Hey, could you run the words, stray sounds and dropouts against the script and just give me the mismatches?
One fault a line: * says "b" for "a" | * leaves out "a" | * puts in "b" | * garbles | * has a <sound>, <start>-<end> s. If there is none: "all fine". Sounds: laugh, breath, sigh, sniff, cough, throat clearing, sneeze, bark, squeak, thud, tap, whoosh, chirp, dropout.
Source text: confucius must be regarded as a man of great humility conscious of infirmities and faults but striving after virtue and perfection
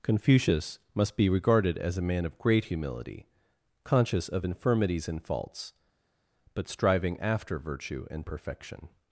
all fine